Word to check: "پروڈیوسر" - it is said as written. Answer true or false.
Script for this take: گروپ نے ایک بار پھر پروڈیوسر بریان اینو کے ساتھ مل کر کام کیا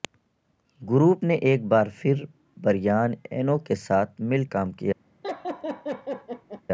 false